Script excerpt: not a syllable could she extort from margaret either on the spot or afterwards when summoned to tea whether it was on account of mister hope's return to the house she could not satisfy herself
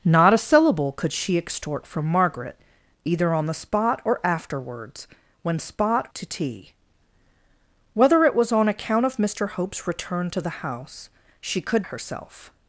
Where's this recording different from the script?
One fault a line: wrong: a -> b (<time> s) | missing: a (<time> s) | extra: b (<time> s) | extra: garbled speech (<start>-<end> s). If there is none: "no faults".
wrong: summoned -> spot (5.6 s)
missing: not satisfy (11.8 s)